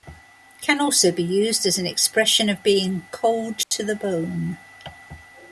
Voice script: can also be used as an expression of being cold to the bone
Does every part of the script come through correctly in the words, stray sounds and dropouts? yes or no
no